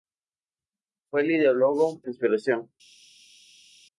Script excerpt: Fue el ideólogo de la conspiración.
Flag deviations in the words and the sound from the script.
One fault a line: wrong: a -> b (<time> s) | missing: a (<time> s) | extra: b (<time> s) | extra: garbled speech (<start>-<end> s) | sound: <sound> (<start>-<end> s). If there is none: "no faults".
missing: de la (2.0 s)